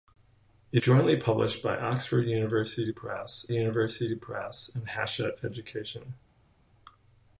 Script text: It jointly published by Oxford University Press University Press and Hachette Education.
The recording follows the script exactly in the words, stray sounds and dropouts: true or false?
true